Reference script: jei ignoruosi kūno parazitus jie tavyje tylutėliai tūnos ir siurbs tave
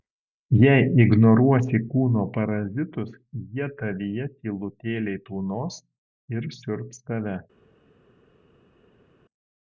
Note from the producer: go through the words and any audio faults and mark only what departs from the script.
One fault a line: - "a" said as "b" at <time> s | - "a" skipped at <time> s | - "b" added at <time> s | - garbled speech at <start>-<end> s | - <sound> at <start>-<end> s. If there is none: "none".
none